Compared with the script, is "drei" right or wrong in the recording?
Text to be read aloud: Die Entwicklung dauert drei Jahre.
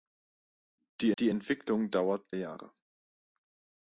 wrong